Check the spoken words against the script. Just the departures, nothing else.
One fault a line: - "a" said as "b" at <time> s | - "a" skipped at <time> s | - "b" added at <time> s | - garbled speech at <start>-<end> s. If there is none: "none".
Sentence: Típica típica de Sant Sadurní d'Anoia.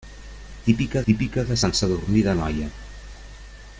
none